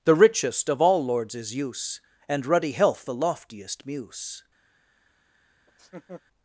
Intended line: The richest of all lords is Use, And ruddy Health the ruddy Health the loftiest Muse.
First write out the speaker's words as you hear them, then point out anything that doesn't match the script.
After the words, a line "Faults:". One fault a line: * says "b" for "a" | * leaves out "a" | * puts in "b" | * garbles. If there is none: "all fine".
The richest of all lords is Use, And ruddy Health the loftiest Muse.
Faults:
* leaves out "ruddy Health the"